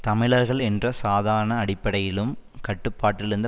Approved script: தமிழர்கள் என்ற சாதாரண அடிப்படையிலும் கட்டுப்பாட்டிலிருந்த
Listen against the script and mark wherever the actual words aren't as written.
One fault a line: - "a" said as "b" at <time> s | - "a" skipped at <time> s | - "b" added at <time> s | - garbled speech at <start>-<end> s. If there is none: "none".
none